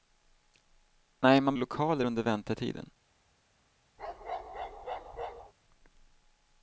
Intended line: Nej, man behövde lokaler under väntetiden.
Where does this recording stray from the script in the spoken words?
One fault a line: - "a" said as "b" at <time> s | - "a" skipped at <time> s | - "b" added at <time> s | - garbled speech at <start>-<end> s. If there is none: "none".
- "behövde" skipped at 1.6 s